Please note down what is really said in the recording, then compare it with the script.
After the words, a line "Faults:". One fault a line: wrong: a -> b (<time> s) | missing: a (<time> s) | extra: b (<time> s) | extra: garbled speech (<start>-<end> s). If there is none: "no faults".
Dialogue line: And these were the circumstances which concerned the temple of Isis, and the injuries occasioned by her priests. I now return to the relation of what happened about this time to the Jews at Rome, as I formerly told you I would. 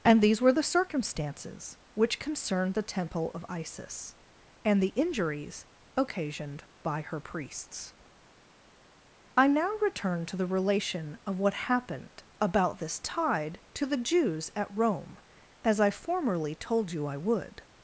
And these were the circumstances which concerned the temple of Isis, and the injuries occasioned by her priests. I now return to the relation of what happened about this tide to the Jews at Rome, as I formerly told you I would.
Faults:
wrong: time -> tide (13.0 s)